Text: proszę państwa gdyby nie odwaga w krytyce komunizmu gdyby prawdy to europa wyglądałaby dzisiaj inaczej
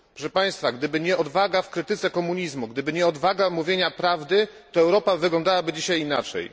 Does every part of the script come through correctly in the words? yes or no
no